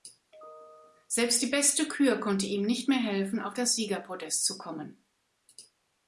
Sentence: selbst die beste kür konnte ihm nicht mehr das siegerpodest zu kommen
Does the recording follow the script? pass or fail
fail